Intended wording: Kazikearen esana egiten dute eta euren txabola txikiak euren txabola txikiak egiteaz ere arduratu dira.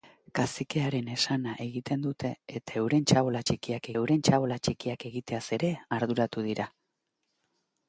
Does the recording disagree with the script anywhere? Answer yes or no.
no